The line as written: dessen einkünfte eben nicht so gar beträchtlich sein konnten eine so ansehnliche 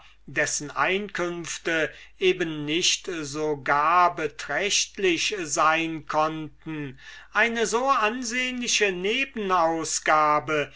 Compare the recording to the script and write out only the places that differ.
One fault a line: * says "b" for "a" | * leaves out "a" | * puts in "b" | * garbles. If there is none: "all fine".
all fine